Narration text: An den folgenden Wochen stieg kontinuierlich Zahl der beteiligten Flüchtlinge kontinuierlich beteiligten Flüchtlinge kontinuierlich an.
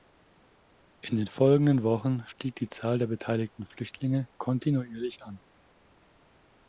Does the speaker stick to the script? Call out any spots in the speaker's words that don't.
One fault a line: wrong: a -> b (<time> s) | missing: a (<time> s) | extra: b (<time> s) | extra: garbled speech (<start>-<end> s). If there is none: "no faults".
wrong: An -> In (1.0 s)
wrong: kontinuierlich -> die (2.5 s)
missing: beteiligten Flüchtlinge kontinuierlich (5.2 s)